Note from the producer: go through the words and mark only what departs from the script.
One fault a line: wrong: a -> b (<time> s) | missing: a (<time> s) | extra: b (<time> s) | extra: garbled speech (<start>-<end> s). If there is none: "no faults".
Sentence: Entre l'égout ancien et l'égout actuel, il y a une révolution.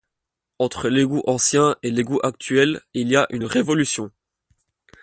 no faults